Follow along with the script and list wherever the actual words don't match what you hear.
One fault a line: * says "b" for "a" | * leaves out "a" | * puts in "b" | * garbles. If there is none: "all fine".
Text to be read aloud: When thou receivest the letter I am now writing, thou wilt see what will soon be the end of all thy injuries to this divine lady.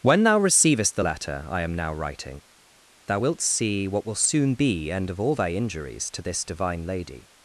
* leaves out "the"